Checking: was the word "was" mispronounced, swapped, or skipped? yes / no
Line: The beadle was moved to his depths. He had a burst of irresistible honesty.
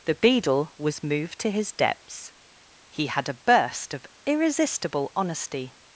no